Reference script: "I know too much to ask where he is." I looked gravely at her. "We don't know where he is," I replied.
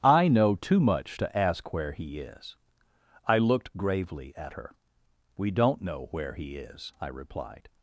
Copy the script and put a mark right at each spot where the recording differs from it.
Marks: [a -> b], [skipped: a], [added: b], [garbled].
"I know too much to ask where he is." I looked gravely at her. "We don't know where he is," I replied.